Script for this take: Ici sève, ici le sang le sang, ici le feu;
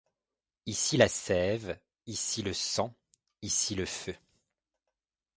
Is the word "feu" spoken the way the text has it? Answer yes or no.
yes